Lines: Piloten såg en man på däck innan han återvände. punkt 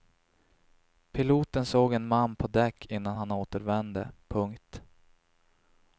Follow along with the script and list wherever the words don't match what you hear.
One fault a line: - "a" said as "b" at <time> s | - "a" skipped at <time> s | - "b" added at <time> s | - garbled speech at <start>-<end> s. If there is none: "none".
none